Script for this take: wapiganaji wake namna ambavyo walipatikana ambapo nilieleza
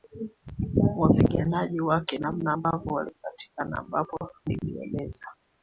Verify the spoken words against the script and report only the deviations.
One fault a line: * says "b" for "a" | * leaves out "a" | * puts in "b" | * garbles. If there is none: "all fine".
all fine